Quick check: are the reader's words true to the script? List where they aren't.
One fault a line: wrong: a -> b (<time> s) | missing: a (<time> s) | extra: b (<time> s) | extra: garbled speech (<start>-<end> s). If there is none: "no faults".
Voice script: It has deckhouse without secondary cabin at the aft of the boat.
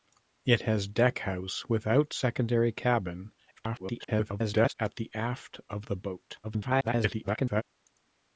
extra: garbled speech (3.6-4.7 s)
extra: garbled speech (6.4-7.6 s)